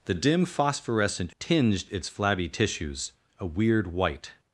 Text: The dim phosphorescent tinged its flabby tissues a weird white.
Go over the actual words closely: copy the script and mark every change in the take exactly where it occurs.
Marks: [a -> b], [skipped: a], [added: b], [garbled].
The dim phosphorescent tinged its flabby tissues a weird white.